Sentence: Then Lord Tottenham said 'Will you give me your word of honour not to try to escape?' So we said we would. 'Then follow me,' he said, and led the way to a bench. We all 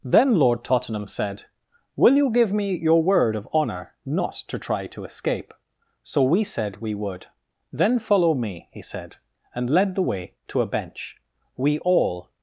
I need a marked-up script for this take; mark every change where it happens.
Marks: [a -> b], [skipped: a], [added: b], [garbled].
Then Lord Tottenham said 'Will you give me your word of honour not to try to escape?' So we said we would. 'Then follow me,' he said, and led the way to a bench. We all